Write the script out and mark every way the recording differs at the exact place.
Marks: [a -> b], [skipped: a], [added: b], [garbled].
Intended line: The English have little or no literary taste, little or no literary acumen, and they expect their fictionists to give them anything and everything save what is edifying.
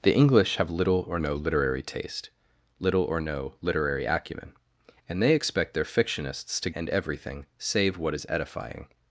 The English have little or no literary taste, little or no literary acumen, and they expect their fictionists to [skipped: give them anything] and everything save what is edifying.